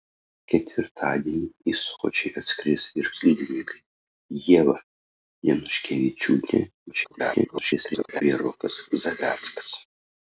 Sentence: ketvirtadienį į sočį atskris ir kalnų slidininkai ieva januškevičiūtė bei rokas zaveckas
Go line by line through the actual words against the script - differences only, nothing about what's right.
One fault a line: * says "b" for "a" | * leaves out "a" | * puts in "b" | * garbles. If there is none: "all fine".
* leaves out "kalnų"
* garbles